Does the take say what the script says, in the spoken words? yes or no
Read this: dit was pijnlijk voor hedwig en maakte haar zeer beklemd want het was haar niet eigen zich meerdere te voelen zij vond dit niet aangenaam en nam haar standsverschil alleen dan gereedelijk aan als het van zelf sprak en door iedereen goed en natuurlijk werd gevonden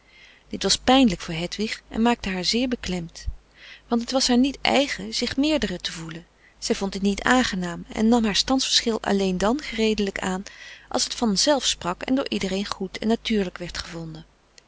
yes